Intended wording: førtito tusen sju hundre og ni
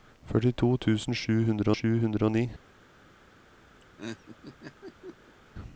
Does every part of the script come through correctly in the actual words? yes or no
no